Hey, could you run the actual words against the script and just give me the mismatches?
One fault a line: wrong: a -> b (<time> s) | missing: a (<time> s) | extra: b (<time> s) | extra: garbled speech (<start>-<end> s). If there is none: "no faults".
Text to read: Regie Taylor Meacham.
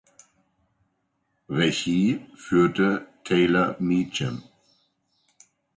extra: führte (2.4 s)